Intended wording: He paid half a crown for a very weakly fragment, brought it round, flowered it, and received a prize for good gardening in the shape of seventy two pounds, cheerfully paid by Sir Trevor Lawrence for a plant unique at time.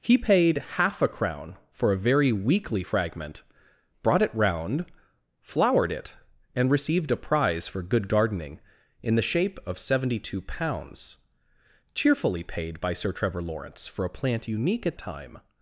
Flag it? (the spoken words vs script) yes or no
no